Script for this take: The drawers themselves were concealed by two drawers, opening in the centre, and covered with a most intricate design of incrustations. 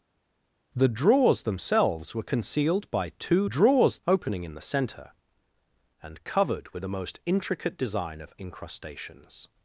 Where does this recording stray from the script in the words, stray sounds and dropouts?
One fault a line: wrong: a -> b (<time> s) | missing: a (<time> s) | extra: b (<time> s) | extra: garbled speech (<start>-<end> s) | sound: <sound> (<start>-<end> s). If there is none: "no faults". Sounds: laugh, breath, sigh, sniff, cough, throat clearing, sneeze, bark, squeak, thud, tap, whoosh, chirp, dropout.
no faults